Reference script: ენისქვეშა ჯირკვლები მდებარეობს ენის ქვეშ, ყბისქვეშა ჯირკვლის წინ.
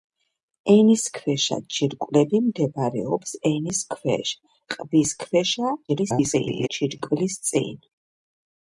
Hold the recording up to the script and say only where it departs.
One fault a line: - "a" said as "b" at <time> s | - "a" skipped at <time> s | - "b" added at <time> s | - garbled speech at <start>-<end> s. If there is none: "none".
- garbled speech at 5.9-6.7 s